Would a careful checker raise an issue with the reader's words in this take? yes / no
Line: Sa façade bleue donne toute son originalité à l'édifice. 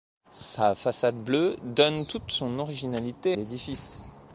yes